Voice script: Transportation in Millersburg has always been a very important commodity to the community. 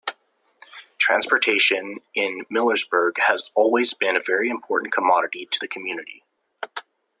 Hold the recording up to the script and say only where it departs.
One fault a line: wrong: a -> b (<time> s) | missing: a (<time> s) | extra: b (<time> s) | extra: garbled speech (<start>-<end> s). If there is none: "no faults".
no faults